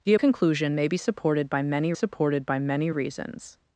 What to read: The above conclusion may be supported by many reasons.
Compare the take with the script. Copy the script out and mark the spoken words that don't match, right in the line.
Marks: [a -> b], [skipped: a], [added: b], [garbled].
The [skipped: above] conclusion may be supported by many [added: supported by many] reasons.